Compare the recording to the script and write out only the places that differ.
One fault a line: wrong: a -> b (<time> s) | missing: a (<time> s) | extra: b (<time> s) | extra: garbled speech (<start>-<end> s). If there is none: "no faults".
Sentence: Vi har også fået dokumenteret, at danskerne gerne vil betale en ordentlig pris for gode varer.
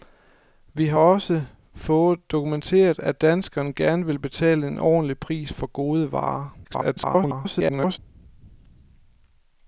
extra: garbled speech (6.6-8.0 s)